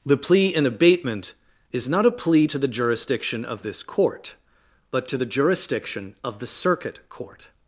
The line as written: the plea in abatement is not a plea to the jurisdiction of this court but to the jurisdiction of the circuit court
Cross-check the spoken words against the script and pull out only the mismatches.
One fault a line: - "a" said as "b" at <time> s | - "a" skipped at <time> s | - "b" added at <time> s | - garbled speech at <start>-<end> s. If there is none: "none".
none